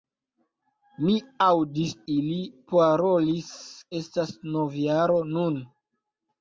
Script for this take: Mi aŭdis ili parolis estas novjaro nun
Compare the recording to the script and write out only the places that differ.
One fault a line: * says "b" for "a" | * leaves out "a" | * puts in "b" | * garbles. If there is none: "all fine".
all fine